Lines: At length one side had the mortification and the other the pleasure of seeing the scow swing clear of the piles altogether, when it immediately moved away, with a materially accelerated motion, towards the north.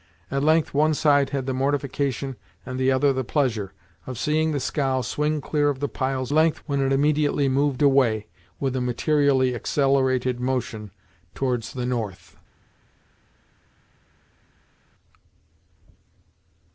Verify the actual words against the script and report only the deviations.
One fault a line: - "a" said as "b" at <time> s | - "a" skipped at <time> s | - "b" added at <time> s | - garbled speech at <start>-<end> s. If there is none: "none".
- "altogether" said as "length" at 6.3 s